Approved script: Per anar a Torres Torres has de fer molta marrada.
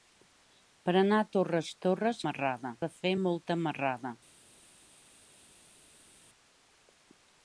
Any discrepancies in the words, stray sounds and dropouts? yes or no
yes